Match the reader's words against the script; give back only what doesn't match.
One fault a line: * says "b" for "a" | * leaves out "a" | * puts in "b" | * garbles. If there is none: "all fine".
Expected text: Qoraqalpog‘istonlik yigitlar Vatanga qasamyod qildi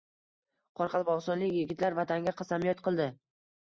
all fine